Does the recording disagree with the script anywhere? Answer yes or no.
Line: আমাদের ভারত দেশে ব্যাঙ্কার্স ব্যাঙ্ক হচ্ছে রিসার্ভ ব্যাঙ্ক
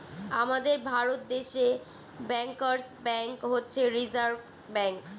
no